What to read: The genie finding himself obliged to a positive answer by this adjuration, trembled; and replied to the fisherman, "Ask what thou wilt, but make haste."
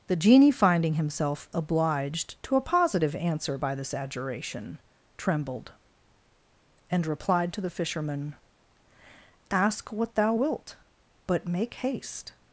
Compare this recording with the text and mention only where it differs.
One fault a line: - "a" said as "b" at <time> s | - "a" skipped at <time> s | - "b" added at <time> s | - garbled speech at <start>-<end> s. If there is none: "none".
none